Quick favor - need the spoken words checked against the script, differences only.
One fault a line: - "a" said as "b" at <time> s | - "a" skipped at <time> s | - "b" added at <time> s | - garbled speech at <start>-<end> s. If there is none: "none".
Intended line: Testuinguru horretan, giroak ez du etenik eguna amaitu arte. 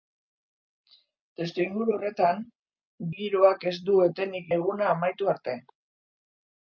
none